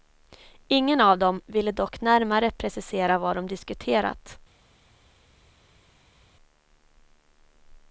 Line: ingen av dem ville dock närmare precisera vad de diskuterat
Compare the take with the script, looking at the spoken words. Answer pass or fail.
pass